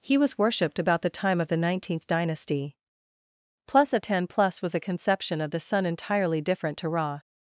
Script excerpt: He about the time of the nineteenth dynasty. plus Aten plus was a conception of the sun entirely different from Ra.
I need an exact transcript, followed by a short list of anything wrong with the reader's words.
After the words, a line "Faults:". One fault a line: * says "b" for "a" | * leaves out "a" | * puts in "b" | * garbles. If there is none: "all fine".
He was worshipped about the time of the nineteenth dynasty. plus Aten plus was a conception of the sun entirely different to Ra.
Faults:
* puts in "was worshipped"
* says "to" for "from"